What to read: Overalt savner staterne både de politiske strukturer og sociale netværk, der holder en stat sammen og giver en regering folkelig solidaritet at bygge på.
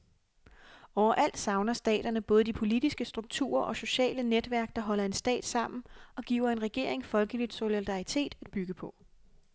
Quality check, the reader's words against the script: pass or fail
pass